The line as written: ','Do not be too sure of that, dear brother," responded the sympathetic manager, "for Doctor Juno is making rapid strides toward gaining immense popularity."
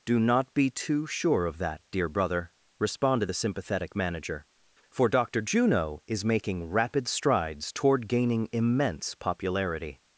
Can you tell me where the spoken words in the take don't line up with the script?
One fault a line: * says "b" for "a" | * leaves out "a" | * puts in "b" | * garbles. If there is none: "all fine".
all fine